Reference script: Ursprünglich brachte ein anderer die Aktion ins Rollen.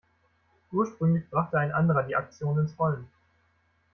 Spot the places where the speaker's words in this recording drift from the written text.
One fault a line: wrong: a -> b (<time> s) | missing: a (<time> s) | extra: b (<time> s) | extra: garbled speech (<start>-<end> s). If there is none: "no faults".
no faults